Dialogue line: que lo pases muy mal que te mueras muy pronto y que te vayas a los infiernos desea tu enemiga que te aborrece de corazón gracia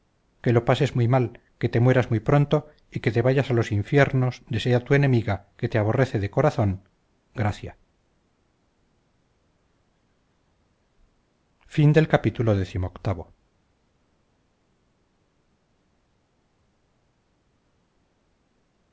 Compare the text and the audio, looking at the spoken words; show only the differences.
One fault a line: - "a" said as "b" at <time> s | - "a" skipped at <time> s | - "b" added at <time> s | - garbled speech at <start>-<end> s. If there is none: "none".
none